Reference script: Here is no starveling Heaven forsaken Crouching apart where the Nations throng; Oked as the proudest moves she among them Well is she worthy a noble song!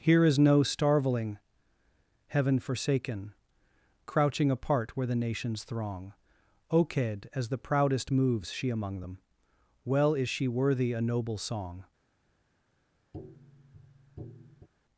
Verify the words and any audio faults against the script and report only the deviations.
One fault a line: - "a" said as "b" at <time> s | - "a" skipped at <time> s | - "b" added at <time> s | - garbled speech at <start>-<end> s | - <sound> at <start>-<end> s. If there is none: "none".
- tap at 13.1-14.7 s